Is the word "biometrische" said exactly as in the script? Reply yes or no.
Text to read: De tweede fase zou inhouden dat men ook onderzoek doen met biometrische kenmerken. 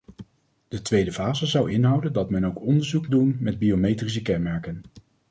yes